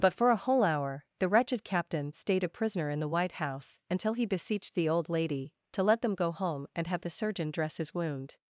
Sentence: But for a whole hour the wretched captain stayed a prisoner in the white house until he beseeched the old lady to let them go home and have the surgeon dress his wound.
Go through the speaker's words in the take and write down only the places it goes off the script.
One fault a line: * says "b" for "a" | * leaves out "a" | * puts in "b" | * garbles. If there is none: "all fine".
all fine